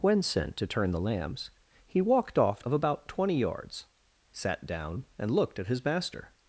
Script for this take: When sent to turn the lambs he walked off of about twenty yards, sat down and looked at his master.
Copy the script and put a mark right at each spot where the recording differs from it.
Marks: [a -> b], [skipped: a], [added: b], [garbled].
When sent to turn the lambs he walked off of about twenty yards, sat down and looked at his master.